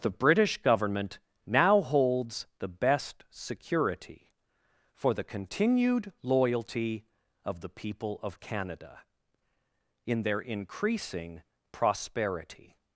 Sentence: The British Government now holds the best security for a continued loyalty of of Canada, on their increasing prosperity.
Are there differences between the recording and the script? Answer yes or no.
yes